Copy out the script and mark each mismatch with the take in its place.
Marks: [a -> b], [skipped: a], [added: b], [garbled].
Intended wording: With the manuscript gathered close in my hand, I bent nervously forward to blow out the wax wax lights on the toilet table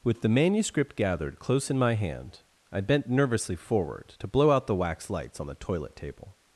With the manuscript gathered close in my hand, I bent nervously forward to blow out the wax [skipped: wax] lights on the toilet table